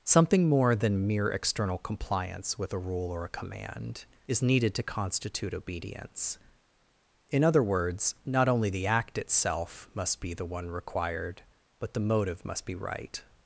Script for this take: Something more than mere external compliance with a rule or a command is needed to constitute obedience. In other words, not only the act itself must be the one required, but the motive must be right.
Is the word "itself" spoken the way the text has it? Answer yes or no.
yes